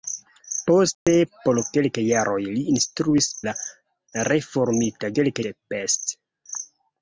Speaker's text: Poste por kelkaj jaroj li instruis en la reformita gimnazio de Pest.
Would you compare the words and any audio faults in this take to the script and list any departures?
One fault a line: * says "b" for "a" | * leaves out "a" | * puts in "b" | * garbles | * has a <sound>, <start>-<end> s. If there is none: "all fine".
* has a dropout, 0.9-1.1 s
* leaves out "en"
* says "kelkaj" for "gimnazio"